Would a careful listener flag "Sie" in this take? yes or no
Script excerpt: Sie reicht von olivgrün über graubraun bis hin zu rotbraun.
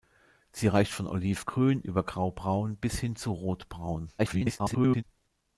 no